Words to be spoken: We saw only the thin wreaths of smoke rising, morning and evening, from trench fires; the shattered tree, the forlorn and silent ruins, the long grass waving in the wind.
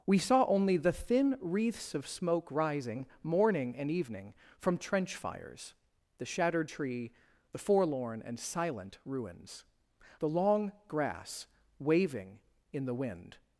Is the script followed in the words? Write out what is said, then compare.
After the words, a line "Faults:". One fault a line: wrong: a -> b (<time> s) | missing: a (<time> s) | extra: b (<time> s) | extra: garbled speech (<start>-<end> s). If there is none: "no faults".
We saw only the thin wreaths of smoke rising, morning and evening, from trench fires; the shattered tree, the forlorn and silent ruins, the long grass waving in the wind.
Faults:
no faults